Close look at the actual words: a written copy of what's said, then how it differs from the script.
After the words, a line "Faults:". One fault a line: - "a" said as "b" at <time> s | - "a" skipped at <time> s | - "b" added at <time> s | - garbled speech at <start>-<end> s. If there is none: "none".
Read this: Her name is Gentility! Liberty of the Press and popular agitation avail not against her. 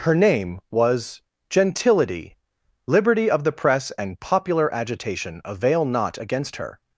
Her name was Gentility! Liberty of the Press and popular agitation avail not against her.
Faults:
- "is" said as "was" at 0.7 s